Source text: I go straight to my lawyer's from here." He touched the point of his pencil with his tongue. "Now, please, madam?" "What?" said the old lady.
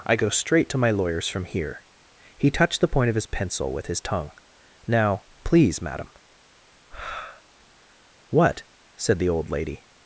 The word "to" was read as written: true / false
true